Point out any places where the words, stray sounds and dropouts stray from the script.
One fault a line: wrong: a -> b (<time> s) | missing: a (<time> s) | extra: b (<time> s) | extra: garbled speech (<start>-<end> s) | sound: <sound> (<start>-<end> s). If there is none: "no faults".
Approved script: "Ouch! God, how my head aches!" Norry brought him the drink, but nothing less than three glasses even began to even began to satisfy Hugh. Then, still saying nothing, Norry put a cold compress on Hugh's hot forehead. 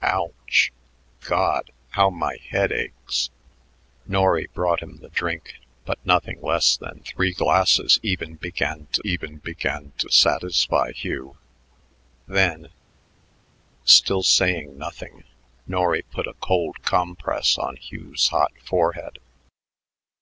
no faults